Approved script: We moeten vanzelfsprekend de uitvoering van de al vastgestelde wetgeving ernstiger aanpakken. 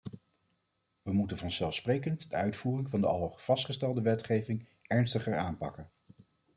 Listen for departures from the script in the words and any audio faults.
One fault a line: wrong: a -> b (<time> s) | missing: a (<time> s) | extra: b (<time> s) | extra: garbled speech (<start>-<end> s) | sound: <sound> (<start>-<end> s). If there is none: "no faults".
no faults